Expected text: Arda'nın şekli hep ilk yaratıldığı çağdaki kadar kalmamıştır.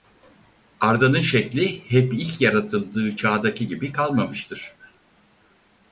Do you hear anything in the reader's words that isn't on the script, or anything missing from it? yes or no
yes